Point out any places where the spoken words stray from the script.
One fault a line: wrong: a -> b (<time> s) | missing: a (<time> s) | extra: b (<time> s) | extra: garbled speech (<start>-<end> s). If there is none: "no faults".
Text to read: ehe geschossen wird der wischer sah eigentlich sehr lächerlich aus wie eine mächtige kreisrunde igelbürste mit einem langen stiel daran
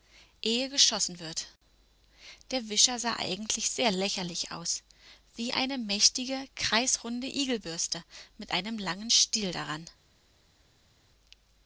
no faults